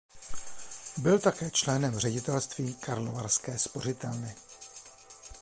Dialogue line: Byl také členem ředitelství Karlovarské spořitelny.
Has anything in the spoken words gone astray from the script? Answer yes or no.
no